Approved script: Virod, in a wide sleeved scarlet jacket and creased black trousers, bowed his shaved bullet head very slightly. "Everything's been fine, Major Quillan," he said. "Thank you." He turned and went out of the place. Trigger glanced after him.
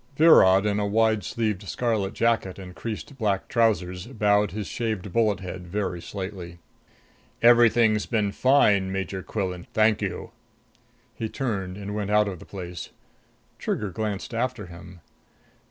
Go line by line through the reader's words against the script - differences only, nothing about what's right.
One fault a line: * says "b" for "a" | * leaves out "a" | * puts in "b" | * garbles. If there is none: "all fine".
* leaves out "he said"